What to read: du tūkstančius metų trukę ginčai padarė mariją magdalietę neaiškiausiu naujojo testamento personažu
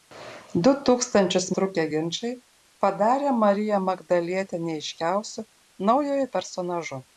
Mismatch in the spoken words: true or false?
true